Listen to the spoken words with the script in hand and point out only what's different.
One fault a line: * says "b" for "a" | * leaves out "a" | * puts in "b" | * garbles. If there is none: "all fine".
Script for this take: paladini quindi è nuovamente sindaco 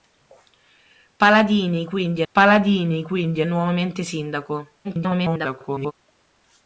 * puts in "paladini quindi"
* garbles